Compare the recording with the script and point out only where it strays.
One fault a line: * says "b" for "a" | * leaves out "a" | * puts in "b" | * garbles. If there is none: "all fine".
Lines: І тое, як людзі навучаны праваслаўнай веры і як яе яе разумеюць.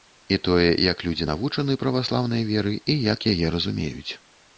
* leaves out "яе"